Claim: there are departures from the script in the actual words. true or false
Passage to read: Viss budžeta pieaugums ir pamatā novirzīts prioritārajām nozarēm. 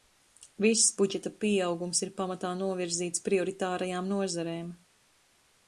false